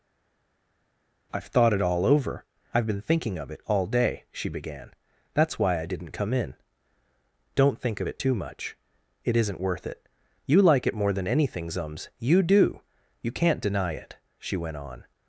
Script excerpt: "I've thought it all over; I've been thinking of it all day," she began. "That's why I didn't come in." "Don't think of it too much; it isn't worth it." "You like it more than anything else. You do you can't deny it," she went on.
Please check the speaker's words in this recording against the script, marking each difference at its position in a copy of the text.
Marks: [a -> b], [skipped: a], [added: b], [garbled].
"I've thought it all over; I've been thinking of it all day," she began. "That's why I didn't come in." "Don't think of it too much; it isn't worth it." "You like it more than anything [else. -> zums] You do you can't deny it," she went on.